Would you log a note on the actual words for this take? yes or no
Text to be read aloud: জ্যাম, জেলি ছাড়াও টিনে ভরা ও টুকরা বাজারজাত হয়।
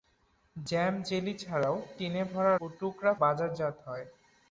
no